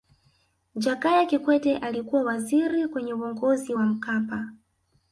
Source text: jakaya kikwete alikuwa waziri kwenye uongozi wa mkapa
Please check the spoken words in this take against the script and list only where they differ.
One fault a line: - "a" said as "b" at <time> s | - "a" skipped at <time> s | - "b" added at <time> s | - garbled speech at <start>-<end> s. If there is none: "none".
none